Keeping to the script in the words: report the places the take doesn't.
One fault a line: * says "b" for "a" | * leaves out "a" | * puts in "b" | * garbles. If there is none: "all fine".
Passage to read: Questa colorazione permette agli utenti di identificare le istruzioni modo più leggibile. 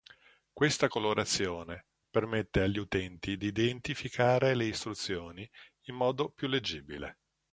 * puts in "in"